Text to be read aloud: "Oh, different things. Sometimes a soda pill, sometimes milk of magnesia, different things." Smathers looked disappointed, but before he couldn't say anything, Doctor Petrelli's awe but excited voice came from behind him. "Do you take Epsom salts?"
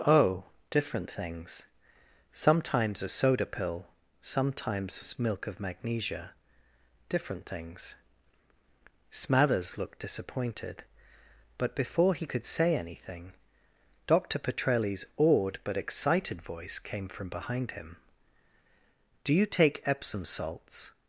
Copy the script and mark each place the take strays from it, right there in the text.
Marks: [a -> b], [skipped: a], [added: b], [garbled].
"Oh, different things. Sometimes a soda pill, sometimes milk of magnesia, different things." Smathers looked disappointed, but before he [couldn't -> could] say anything, Doctor Petrelli's [awe -> awed] but excited voice came from behind him. "Do you take Epsom salts?"